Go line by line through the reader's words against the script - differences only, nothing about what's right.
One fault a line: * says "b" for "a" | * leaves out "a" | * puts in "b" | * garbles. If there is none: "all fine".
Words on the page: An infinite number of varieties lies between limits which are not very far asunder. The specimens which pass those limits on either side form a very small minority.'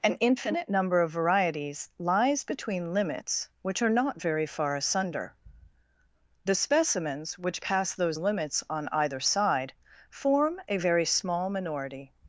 all fine